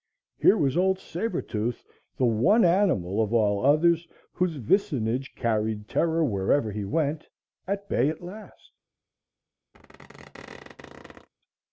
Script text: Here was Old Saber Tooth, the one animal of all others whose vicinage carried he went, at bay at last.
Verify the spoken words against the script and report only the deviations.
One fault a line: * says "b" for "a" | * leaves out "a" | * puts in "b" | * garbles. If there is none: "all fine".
* puts in "terror wherever"